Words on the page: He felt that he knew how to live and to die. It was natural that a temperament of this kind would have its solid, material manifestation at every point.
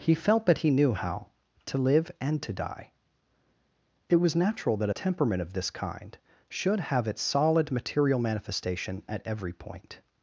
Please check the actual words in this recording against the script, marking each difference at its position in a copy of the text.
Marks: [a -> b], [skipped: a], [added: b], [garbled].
He felt that he knew how to live and to die. It was natural that a temperament of this kind [would -> should] have its solid, material manifestation at every point.